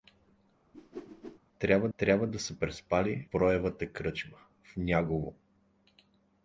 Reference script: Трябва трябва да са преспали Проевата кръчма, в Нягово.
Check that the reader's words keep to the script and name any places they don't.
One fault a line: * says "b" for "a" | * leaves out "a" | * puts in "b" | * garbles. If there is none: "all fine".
all fine